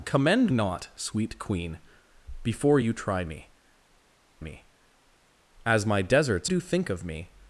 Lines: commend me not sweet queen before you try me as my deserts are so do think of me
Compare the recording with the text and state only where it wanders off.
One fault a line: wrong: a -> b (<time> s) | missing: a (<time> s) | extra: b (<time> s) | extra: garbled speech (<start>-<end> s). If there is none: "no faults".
missing: me (0.5 s)
extra: me (4.4 s)
missing: are so (6.5 s)